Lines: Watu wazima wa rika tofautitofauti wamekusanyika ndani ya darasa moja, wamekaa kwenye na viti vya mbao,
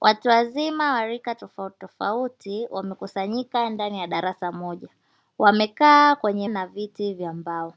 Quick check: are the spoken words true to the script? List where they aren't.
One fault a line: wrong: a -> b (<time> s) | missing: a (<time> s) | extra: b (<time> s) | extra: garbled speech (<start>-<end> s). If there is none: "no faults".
no faults